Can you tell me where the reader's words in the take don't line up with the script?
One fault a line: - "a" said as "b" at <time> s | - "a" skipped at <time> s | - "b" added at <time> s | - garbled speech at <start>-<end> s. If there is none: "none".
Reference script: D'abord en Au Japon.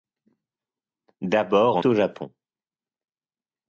none